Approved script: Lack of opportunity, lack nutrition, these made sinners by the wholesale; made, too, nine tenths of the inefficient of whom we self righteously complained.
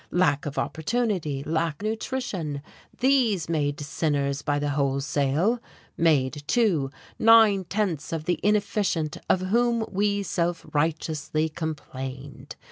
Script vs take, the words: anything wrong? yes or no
no